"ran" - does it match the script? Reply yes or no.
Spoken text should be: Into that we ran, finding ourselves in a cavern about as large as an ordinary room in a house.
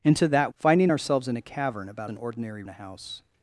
no